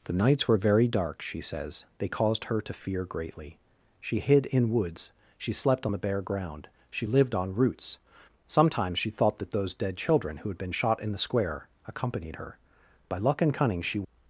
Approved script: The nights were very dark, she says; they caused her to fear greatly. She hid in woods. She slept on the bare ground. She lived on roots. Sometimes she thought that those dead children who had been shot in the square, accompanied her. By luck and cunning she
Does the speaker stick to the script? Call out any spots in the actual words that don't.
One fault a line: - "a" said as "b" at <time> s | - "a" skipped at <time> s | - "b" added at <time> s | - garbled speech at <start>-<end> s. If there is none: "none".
none